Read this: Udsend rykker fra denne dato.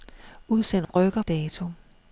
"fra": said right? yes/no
no